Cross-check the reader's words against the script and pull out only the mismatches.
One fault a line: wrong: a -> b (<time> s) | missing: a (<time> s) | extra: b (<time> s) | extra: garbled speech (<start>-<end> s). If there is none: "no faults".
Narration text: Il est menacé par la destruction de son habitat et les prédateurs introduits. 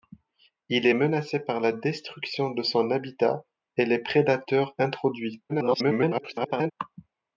extra: garbled speech (5.5-6.7 s)